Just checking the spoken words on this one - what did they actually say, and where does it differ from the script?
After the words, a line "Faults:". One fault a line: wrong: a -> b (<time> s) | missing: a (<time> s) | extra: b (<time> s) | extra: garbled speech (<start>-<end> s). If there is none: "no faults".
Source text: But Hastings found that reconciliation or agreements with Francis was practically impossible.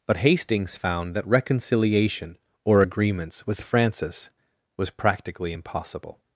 But Hastings found that reconciliation or agreements with Francis was practically impossible.
Faults:
no faults